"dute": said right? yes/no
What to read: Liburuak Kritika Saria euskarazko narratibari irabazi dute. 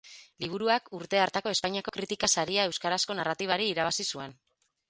no